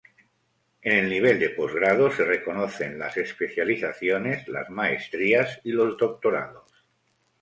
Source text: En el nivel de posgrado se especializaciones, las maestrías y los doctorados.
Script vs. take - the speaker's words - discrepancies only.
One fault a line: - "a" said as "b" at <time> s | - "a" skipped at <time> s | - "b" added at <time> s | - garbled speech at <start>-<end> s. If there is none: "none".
- "reconocen las" added at 2.2 s